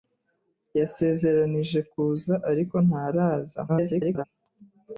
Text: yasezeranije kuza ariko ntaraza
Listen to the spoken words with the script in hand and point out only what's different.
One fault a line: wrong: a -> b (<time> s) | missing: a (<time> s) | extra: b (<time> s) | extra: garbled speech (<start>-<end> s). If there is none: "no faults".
extra: garbled speech (3.7-4.2 s)